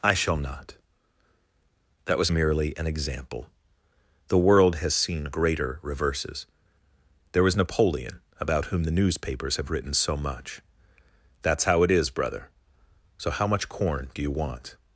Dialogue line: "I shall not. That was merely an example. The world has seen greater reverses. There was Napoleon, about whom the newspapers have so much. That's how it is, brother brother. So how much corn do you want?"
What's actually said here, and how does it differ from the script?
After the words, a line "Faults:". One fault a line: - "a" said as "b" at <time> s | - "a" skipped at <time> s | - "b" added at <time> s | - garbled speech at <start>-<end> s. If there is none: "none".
"I shall not. That was merely an example. The world has seen greater reverses. There was Napoleon, about whom the newspapers have written so much. That's how it is, brother. So how much corn do you want?"
Faults:
- "written" added at 9.7 s
- "brother" skipped at 12.5 s